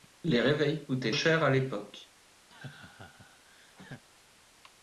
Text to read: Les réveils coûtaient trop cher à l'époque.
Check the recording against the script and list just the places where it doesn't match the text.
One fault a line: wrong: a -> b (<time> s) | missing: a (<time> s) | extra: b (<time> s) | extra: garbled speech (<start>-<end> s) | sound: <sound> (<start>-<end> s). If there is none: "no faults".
missing: trop (1.1 s)
sound: laugh (2.5-4.0 s)